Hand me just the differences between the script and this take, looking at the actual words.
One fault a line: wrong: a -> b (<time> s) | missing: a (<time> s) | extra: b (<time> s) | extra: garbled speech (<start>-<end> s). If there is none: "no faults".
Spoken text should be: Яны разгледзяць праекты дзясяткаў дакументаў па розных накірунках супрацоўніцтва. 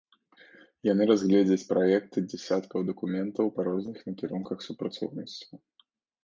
no faults